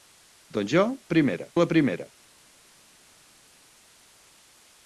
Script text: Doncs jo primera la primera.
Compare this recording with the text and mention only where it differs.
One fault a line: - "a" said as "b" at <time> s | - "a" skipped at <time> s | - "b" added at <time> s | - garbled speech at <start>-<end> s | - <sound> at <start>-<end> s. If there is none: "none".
none